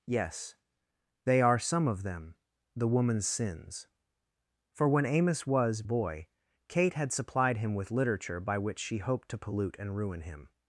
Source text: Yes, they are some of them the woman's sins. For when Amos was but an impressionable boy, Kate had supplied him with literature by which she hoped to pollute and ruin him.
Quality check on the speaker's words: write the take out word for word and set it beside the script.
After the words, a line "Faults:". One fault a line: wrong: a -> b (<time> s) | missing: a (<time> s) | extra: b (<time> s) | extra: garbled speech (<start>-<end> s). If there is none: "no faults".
Yes, they are some of them the woman's sins. For when Amos was boy, Kate had supplied him with literature by which she hoped to pollute and ruin him.
Faults:
missing: but an impressionable (5.8 s)